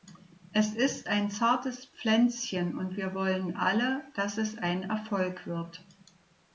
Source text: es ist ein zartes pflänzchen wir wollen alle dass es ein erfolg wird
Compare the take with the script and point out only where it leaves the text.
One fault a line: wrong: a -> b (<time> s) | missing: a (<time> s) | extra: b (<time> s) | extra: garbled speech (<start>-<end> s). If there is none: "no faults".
extra: und (2.8 s)